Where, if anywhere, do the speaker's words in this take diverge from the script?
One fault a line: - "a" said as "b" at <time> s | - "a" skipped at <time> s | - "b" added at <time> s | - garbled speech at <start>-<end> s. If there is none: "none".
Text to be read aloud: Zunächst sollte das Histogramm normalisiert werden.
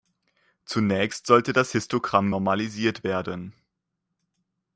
none